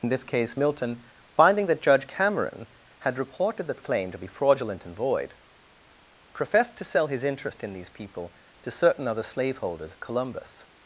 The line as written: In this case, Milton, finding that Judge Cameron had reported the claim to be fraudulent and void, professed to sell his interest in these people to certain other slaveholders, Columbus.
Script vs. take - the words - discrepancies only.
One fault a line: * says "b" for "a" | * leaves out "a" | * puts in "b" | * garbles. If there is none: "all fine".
all fine